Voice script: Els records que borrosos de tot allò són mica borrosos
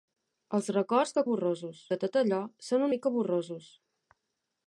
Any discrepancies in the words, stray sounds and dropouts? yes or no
no